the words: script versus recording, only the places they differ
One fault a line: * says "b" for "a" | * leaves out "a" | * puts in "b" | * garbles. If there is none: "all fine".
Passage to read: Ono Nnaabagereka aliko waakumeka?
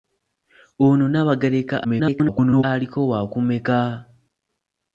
* garbles